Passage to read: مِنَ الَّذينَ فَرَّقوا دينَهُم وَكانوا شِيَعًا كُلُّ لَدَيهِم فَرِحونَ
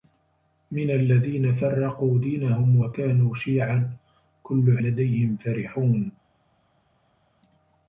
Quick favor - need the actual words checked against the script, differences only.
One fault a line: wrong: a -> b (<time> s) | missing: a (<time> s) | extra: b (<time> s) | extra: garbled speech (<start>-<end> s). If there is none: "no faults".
no faults